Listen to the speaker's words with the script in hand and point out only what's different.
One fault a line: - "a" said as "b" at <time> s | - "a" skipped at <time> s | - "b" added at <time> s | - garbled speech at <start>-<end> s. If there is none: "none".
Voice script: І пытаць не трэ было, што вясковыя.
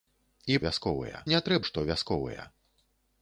- "пытаць" said as "вясковыя" at 0.7 s
- "было" skipped at 1.6 s